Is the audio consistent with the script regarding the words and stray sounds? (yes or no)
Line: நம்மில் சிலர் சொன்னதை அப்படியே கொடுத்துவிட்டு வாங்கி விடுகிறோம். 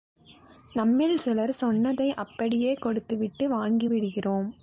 yes